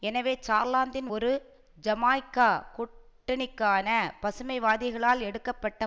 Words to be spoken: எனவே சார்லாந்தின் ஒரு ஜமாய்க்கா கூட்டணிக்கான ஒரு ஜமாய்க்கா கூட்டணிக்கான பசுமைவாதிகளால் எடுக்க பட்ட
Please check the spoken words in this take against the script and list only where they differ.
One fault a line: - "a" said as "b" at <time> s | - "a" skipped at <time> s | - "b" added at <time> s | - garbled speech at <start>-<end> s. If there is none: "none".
- "ஒரு ஜமாய்க்கா கூட்டணிக்கான" skipped at 3.9 s